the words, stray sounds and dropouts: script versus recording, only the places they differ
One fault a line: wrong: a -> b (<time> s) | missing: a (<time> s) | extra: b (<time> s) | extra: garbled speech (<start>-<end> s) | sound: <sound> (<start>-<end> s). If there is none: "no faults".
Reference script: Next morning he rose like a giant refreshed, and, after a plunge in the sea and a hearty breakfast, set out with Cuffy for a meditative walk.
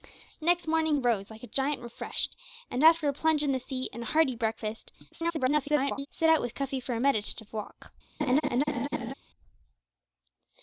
missing: he (1.0 s)
extra: garbled speech (5.1-6.1 s)
sound: laugh (8.2-9.1 s)